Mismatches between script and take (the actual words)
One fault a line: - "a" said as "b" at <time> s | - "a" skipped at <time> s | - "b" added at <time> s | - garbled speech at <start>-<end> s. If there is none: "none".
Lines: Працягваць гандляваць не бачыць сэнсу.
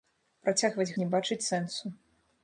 - "гандляваць" skipped at 0.9 s